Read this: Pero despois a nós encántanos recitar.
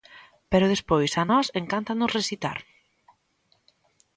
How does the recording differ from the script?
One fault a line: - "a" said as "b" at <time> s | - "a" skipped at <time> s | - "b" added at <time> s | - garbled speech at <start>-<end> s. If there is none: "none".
none